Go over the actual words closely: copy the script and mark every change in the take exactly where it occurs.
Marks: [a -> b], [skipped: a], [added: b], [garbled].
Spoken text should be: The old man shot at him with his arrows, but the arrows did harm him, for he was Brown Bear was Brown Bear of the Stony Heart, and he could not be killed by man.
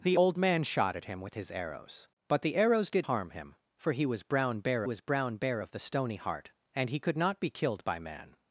The old man shot at him with his arrows, but the arrows did harm him, for he was Brown Bear was Brown Bear of the Stony Heart, and he could not be killed by man.